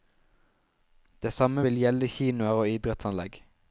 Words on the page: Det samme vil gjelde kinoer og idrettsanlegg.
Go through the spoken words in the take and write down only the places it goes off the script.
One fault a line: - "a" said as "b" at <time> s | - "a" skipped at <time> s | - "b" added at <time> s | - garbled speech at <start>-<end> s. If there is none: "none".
none